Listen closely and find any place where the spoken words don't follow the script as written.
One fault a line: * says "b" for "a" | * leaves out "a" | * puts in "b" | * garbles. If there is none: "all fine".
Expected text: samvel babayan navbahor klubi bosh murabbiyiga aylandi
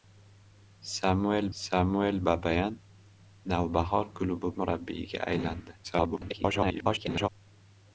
* puts in "samvel"
* leaves out "bosh"
* garbles